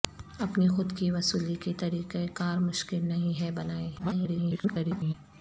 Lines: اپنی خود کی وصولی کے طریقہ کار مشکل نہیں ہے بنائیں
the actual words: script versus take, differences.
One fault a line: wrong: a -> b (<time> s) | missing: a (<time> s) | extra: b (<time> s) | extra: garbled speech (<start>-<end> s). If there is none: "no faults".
extra: garbled speech (4.0-5.1 s)